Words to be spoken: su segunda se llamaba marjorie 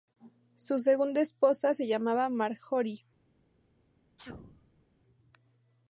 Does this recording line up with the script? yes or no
no